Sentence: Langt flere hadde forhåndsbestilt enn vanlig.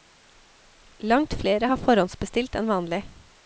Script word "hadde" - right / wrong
wrong